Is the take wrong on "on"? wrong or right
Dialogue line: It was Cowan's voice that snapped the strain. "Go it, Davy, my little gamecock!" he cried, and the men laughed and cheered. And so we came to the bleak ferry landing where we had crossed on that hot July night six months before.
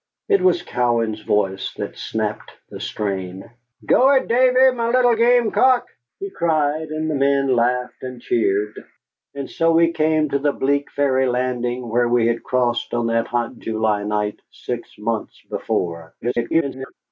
right